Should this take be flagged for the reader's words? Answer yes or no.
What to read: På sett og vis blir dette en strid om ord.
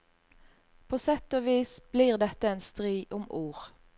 no